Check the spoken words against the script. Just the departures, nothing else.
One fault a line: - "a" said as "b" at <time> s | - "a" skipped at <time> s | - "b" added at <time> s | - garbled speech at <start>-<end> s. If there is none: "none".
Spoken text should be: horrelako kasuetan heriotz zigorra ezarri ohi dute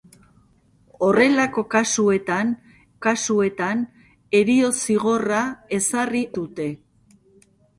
- "kasuetan" added at 3.0 s
- "ohi" skipped at 6.2 s